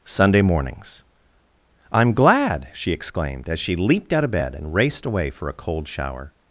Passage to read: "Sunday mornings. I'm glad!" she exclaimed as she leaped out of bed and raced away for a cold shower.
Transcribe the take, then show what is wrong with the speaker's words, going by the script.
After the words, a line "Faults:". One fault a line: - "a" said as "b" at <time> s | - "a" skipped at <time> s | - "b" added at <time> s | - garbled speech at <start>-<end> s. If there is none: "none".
"Sunday mornings. I'm glad!" she exclaimed as she leaped out of bed and raced away for a cold shower.
Faults:
none